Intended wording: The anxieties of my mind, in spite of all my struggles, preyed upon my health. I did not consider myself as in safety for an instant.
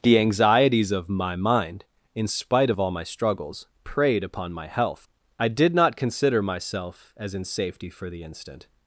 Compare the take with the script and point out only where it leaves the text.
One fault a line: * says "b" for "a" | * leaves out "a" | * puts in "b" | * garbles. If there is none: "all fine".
* says "the" for "an"